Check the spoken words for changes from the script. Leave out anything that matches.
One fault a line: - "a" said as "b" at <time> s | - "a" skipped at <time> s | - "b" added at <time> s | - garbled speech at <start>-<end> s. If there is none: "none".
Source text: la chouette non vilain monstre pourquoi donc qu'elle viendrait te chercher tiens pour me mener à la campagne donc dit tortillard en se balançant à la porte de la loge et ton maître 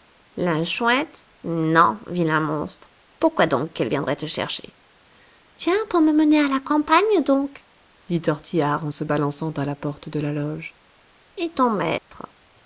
none